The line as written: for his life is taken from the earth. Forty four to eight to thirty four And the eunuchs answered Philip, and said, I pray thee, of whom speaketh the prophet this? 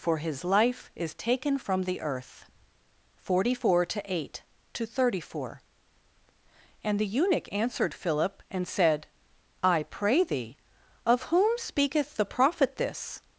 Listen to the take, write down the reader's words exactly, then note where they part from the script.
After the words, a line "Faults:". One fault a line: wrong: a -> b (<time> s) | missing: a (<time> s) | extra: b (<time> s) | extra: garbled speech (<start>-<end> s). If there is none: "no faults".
for his life is taken from the earth. Forty four to eight to thirty four And the eunuch answered Philip, and said, I pray thee, of whom speaketh the prophet this?
Faults:
wrong: eunuchs -> eunuch (7.1 s)